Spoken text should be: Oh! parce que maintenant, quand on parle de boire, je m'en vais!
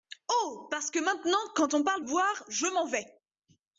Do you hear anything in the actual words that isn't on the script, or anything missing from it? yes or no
yes